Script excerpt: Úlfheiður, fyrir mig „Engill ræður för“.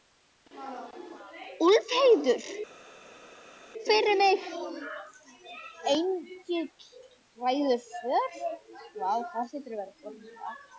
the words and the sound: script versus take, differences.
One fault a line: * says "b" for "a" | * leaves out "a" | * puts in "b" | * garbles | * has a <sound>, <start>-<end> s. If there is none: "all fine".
all fine